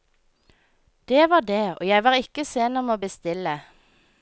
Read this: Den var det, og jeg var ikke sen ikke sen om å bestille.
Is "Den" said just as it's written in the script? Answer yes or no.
no